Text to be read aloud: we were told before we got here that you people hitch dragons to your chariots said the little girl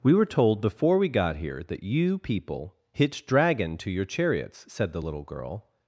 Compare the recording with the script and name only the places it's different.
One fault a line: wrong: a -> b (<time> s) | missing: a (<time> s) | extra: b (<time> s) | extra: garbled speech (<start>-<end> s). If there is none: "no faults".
wrong: dragons -> dragon (3.2 s)